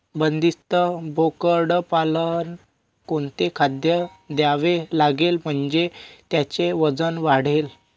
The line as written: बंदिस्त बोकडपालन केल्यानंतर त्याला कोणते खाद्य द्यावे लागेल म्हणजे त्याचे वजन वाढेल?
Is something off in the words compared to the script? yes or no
yes